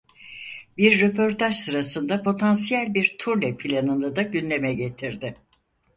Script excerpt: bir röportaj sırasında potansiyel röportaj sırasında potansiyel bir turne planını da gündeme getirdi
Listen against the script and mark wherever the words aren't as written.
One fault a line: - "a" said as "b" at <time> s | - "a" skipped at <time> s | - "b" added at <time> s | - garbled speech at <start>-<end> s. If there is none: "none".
- "röportaj sırasında potansiyel" skipped at 2.9 s